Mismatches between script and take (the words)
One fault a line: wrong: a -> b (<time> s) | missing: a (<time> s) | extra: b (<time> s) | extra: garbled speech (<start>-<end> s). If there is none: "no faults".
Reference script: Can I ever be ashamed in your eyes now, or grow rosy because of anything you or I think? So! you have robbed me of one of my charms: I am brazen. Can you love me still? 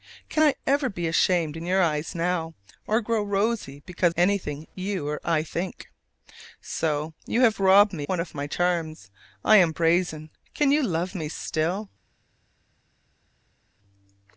missing: of (4.1 s)
missing: of (8.1 s)